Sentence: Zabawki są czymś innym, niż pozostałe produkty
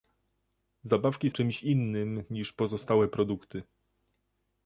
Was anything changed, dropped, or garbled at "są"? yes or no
yes